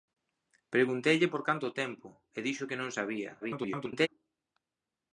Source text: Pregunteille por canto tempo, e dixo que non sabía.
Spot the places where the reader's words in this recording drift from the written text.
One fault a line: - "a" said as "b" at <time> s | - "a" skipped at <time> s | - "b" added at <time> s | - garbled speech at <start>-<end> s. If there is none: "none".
- garbled speech at 3.4-4.1 s